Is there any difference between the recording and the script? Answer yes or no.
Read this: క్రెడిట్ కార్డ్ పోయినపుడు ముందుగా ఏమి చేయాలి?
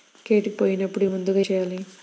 yes